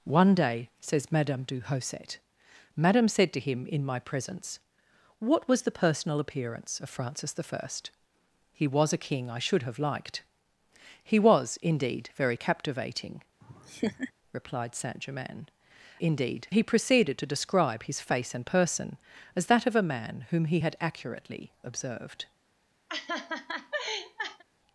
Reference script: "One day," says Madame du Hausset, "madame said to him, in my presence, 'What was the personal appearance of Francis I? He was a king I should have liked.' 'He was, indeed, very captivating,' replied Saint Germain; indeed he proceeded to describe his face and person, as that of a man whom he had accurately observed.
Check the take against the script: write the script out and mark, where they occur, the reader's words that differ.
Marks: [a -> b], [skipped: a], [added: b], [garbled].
"One day," says Madame du Hausset, "madame said to him, in my presence, 'What was the personal appearance of Francis I? He was a king I should have liked.' 'He was, indeed, very captivating,' replied Saint Germain; indeed he proceeded to describe his face and person, as that of a man whom he had accurately observed.